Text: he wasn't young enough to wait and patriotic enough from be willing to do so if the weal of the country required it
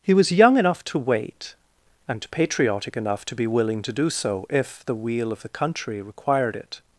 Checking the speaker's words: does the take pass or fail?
fail